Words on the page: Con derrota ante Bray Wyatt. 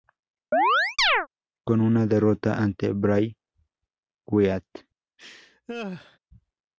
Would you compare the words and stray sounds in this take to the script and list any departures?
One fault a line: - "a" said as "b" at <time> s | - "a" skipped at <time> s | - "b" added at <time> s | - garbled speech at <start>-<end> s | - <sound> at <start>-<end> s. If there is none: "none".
- chirp at 0.5-1.3 s
- "una" added at 1.8 s
- laugh at 5.2-6.2 s